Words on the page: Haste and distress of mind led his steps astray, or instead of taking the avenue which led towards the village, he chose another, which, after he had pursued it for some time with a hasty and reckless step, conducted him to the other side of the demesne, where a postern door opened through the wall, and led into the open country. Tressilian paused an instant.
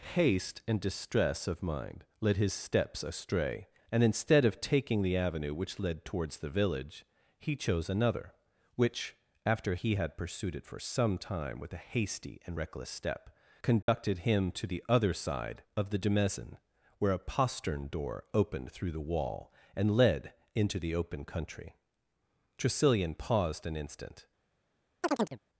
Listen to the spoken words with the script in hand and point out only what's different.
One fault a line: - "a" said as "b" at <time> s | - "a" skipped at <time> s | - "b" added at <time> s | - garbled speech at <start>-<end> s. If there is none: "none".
- "or" said as "and" at 3.9 s